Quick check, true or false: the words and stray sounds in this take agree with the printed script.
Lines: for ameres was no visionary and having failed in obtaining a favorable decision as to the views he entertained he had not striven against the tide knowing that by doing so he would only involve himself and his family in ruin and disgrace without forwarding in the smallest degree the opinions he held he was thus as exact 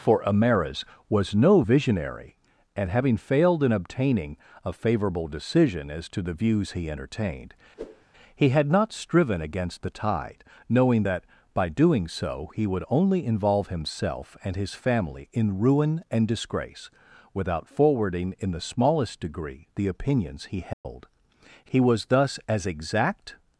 false